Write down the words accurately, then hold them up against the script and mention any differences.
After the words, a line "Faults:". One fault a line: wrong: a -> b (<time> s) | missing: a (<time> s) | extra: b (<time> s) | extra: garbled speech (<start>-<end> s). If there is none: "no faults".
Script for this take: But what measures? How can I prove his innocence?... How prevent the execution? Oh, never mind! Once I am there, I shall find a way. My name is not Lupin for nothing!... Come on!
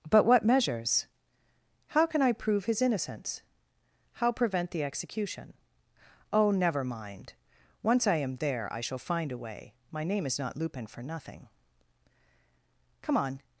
But what measures? How can I prove his innocence?... How prevent the execution? Oh, never mind! Once I am there, I shall find a way. My name is not Lupin for nothing!... Come on!
Faults:
no faults